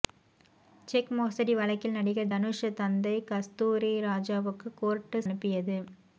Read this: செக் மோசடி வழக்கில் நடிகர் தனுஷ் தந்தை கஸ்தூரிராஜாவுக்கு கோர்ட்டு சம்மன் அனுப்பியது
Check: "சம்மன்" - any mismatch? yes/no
yes